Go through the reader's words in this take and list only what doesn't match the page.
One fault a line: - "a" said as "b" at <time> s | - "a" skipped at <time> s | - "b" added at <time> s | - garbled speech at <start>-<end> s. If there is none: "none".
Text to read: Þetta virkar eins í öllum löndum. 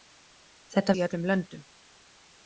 - "virkar eins" skipped at 0.9 s